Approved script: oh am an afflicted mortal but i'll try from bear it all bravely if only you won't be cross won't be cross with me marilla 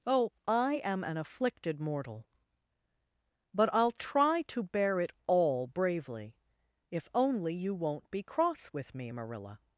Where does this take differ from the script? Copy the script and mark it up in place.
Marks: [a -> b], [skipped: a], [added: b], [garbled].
oh [added: i] am an afflicted mortal but i'll try [from -> to] bear it all bravely if only you won't be cross [skipped: won't be cross] with me marilla